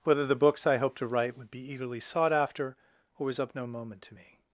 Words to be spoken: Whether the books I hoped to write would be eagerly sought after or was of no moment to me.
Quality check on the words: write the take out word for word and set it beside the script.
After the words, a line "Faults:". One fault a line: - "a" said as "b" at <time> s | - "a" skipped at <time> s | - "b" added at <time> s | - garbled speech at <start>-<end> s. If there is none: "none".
Whether the books I hoped to write would be eagerly sought after or was of no moment to me.
Faults:
none